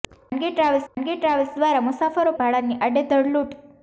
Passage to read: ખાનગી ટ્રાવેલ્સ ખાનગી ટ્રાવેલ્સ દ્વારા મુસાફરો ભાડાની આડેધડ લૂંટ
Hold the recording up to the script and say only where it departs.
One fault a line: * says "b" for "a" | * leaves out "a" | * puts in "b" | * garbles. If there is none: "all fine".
all fine